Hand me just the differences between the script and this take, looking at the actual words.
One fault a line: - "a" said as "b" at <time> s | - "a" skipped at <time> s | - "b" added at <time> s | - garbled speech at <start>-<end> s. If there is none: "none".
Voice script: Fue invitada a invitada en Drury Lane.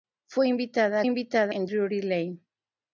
none